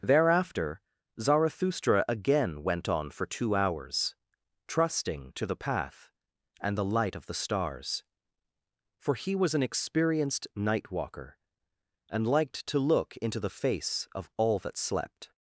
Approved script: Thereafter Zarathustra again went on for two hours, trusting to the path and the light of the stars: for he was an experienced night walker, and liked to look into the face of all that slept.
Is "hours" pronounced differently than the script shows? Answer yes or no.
no